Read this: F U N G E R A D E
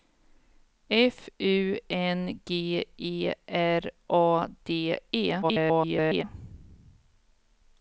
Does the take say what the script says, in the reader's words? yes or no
no